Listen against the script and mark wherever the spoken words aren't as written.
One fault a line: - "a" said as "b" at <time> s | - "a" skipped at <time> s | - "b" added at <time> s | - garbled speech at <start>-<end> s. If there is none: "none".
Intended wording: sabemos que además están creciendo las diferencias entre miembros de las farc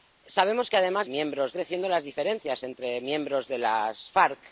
- "están" said as "miembros" at 1.1 s